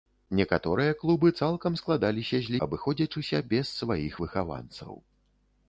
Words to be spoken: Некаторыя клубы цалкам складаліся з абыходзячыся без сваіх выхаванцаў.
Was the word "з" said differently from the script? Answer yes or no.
no